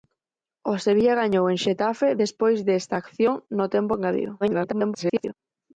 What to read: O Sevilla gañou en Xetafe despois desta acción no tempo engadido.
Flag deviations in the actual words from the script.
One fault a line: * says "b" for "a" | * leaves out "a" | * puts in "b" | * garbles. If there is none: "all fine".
* garbles